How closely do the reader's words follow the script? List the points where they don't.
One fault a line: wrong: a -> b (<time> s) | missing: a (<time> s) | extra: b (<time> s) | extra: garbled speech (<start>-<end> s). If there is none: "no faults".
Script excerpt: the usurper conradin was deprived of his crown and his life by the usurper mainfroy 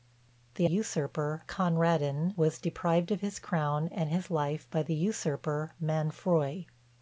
no faults